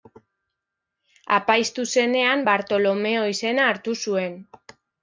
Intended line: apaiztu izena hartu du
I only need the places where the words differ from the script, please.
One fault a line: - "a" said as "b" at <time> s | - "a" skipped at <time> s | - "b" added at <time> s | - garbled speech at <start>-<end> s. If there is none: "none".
- "zenean bartolomeo" added at 2.0 s
- "du" said as "zuen" at 4.1 s